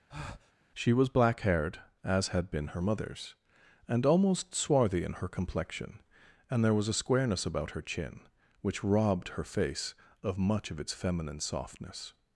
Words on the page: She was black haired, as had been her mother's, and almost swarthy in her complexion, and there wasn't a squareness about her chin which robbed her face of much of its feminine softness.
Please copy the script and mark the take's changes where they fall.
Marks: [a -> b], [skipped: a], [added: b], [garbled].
She was black haired, as had been her mother's, and almost swarthy in her complexion, and there [wasn't -> was] a squareness about her chin which robbed her face of much of its feminine softness.